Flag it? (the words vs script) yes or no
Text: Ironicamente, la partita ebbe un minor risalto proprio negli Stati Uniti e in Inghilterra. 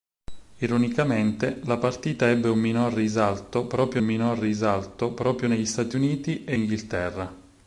yes